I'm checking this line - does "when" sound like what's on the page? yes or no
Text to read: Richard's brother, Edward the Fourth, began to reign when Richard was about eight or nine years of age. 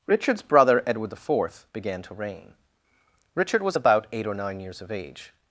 no